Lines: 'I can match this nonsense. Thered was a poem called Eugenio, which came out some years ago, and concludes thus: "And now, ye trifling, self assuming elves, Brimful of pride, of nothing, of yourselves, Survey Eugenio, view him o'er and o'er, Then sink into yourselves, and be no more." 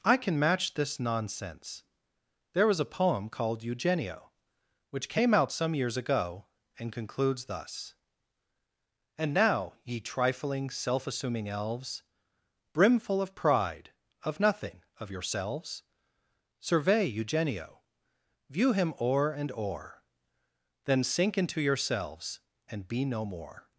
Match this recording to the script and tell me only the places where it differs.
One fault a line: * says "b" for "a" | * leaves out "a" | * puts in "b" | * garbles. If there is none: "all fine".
* says "There" for "Thered"